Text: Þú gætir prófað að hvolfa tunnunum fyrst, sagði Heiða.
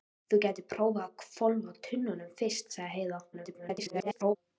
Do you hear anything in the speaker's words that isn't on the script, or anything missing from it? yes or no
yes